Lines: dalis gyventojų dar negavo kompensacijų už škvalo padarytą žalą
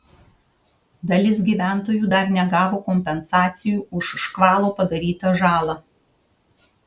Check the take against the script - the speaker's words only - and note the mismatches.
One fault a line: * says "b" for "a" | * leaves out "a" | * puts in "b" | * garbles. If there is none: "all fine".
all fine